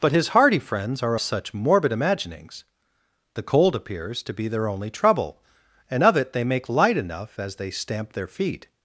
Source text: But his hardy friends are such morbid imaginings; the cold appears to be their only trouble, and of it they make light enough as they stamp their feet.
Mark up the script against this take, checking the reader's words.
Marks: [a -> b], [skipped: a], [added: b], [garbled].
But his hardy friends are such morbid imaginings; the cold appears to be their only trouble, and of it they make light enough as they stamp their feet.